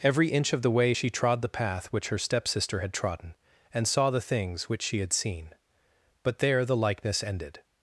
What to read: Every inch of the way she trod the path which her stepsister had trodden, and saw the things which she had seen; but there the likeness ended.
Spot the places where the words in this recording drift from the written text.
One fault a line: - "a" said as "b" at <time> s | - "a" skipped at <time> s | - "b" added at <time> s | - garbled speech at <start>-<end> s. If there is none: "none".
none